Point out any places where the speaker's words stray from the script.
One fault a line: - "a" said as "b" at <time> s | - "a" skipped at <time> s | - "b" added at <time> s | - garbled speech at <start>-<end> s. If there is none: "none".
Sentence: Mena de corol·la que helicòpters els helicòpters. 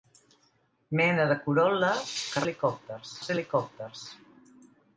none